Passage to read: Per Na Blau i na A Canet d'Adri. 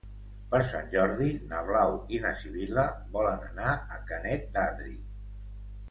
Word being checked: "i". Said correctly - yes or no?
yes